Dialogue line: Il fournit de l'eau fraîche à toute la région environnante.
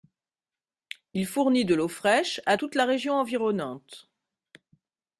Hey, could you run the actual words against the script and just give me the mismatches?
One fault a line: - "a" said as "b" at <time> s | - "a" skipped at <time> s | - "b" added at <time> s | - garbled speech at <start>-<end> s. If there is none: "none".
none